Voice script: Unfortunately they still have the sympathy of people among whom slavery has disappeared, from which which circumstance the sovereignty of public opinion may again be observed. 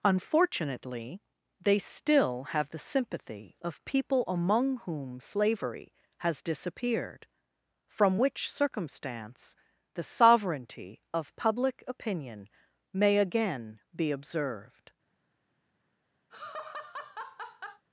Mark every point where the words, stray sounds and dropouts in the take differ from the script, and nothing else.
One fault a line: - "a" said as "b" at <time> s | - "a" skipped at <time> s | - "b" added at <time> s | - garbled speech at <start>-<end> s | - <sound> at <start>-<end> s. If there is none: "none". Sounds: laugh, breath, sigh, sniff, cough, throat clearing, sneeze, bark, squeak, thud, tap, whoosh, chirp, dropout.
- "which" skipped at 8.5 s
- laugh at 16.3-17.8 s